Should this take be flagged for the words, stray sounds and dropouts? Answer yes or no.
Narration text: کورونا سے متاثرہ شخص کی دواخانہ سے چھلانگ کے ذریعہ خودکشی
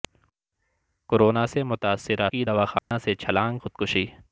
yes